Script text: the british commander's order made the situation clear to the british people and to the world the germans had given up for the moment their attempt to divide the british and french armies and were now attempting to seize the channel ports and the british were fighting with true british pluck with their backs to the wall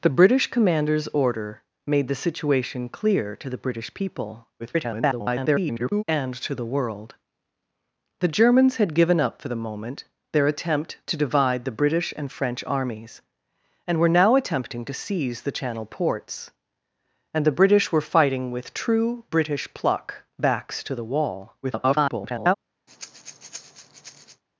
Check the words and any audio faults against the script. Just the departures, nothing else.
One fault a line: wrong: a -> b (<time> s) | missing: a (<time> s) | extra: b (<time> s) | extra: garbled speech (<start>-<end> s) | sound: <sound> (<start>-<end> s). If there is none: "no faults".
extra: garbled speech (4.6-6.0 s)
missing: with their (20.2 s)
extra: garbled speech (21.6-22.5 s)
sound: breath (22.9-24.4 s)